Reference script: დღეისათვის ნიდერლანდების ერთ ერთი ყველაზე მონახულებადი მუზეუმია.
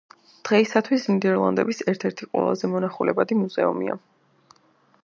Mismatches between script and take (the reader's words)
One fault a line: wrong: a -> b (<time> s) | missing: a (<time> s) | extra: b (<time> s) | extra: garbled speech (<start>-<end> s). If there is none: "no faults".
no faults